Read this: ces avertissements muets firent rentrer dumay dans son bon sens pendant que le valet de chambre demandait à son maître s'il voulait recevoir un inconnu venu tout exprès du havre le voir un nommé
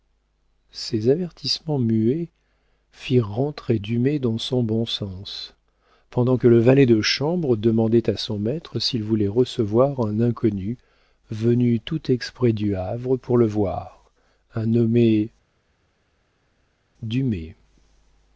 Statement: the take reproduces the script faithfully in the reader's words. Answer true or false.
false